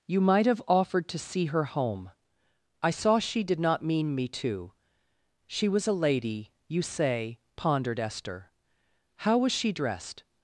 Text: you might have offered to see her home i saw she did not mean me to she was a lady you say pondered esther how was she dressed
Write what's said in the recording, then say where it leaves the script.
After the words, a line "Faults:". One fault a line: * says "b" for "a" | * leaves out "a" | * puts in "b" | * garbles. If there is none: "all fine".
you might have offered to see her home i saw she did not mean me to she was a lady you say pondered esther how was she dressed
Faults:
all fine